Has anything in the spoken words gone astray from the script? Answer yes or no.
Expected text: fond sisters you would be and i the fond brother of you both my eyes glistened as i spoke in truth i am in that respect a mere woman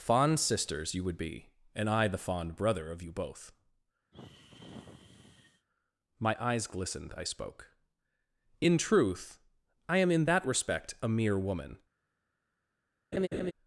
yes